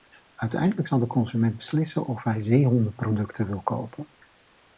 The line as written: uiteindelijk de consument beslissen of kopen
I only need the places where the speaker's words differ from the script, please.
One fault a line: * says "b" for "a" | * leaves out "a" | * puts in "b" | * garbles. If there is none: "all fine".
* puts in "zal"
* puts in "hij zeehondenproducten wil"